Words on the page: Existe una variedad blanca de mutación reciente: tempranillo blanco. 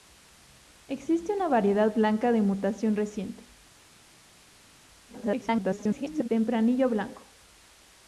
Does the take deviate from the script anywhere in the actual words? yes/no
yes